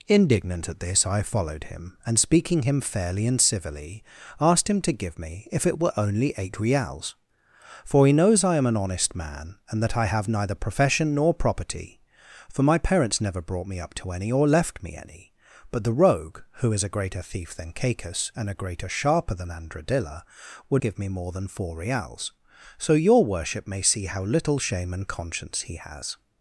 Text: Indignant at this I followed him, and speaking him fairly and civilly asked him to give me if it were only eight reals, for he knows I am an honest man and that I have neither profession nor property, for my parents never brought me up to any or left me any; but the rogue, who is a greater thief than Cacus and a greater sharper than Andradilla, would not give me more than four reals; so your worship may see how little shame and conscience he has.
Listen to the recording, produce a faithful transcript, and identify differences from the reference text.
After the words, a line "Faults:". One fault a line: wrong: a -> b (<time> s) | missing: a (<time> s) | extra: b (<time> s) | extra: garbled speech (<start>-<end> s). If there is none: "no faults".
Indignant at this I followed him, and speaking him fairly and civilly asked him to give me if it were only eight reals, for he knows I am an honest man and that I have neither profession nor property, for my parents never brought me up to any or left me any; but the rogue, who is a greater thief than Cacus and a greater sharper than Andradilla, would give me more than four reals; so your worship may see how little shame and conscience he has.
Faults:
missing: not (20.8 s)